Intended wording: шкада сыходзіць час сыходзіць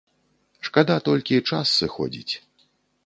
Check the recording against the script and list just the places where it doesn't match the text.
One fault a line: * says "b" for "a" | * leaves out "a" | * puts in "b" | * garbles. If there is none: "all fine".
* says "толькі" for "сыходзіць"